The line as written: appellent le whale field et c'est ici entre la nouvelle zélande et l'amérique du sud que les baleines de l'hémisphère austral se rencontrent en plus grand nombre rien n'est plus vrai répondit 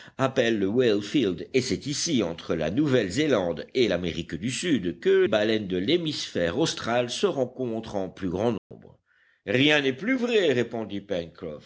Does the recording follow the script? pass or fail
fail